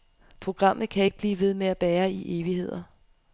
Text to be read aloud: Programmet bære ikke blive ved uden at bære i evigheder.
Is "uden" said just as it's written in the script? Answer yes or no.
no